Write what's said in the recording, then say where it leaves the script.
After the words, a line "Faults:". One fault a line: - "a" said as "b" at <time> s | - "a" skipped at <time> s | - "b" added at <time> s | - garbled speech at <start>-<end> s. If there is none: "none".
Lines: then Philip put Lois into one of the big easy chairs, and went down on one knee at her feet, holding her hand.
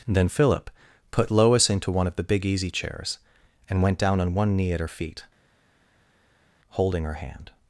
then Philip put Lois into one of the big easy chairs, and went down on one knee at her feet, holding her hand.
Faults:
none